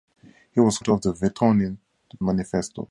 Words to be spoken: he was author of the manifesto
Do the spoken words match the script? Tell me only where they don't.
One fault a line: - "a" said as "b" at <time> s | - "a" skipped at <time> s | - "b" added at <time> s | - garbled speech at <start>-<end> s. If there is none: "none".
none